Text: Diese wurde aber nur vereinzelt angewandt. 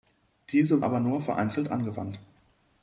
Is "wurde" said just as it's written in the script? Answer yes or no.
no